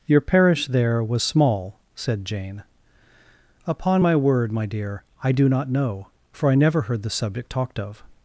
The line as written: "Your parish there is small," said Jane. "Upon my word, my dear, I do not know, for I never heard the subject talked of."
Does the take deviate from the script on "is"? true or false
true